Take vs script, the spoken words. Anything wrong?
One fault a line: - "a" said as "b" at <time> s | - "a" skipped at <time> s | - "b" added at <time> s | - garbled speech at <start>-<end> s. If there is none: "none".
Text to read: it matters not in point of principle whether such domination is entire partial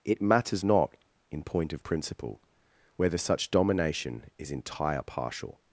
none